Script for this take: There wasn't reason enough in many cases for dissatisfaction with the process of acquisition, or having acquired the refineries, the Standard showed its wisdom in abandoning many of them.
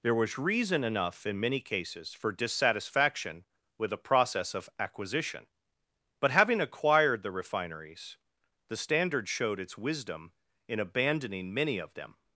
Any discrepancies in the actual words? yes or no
yes